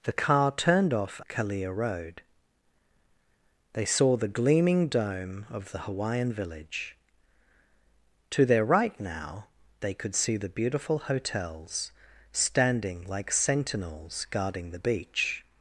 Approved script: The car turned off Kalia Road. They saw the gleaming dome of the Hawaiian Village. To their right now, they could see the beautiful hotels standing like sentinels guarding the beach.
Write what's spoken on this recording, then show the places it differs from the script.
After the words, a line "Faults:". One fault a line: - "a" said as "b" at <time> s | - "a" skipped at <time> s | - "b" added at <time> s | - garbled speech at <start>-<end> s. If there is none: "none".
The car turned off Kalia Road. They saw the gleaming dome of the Hawaiian Village. To their right now, they could see the beautiful hotels standing like sentinels guarding the beach.
Faults:
none